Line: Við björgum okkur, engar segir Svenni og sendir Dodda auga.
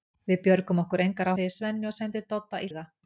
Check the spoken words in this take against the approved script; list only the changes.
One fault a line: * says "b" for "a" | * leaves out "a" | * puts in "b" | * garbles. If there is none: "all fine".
all fine